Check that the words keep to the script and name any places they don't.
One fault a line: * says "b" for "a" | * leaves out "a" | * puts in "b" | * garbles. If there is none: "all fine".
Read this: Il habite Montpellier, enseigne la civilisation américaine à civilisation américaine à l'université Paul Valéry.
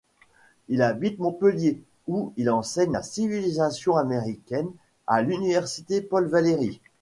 * puts in "où il"
* leaves out "civilisation américaine à"